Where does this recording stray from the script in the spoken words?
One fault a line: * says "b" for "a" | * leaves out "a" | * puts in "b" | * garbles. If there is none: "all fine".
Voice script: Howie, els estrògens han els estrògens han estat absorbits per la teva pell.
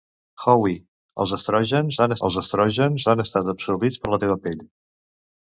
all fine